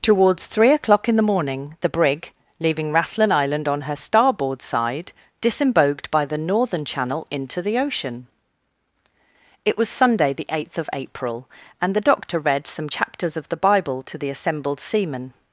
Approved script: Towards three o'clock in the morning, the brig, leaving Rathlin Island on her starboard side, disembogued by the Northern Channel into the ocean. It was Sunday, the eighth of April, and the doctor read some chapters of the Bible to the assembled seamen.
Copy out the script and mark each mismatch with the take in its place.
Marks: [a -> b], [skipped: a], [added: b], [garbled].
Towards three o'clock in the morning, the brig, leaving Rathlin Island on her starboard side, disembogued by the Northern Channel into the ocean. It was Sunday, the eighth of April, and the doctor read some chapters of the Bible to the assembled seamen.